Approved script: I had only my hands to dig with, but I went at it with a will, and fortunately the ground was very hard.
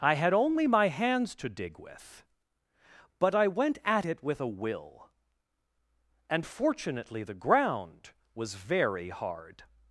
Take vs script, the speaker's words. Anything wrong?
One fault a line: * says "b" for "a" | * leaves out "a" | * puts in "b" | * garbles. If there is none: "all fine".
all fine